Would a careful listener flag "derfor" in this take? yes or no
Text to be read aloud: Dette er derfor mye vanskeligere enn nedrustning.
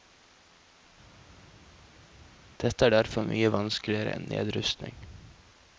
no